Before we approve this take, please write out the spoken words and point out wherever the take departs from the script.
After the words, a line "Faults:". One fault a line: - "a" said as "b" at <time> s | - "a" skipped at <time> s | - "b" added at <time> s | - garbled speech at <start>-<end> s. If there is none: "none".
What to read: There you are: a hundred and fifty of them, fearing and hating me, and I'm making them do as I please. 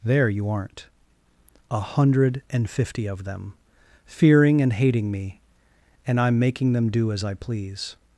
There you aren't: a hundred and fifty of them, fearing and hating me, and I'm making them do as I please.
Faults:
- "are" said as "aren't" at 0.5 s